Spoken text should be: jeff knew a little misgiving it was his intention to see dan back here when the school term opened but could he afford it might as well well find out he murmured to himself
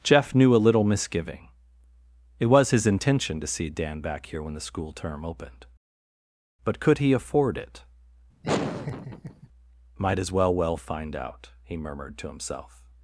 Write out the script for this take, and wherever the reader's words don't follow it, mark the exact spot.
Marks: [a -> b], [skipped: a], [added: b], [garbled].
jeff knew a little misgiving it was his intention to see dan back here when the school term opened but could he afford it might as well well find out he murmured to himself